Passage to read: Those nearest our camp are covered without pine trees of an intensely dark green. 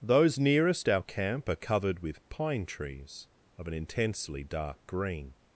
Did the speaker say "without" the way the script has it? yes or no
no